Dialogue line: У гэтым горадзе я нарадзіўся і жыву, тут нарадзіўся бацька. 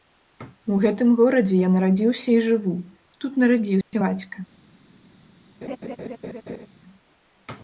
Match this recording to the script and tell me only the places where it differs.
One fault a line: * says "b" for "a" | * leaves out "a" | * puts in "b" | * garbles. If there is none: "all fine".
all fine